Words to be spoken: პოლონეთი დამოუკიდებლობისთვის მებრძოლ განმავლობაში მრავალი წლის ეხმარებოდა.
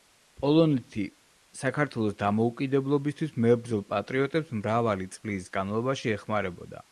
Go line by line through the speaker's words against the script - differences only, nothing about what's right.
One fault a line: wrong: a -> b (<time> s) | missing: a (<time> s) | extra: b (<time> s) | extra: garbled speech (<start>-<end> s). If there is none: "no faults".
extra: საქართველოს (1.6 s)
wrong: განმავლობაში -> პატრიოტებს (3.9 s)
extra: განმავლობაში (5.6 s)